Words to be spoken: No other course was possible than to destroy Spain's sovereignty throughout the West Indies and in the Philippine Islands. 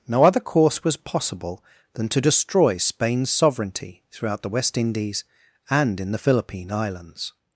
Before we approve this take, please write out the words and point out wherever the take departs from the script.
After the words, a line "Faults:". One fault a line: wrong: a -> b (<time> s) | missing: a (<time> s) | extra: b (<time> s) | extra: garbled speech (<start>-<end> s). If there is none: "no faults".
No other course was possible than to destroy Spain's sovereignty throughout the West Indies and in the Philippine Islands.
Faults:
no faults